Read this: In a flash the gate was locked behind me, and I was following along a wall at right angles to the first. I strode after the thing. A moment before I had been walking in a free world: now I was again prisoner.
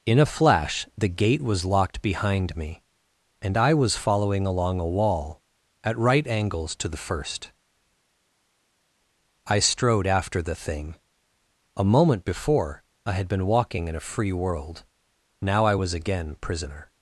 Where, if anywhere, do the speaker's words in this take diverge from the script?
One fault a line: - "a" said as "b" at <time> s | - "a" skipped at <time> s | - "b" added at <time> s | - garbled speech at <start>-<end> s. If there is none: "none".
none